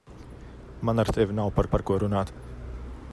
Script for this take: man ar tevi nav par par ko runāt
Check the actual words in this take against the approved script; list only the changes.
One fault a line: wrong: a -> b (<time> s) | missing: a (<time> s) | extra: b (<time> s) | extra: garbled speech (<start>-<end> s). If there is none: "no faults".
no faults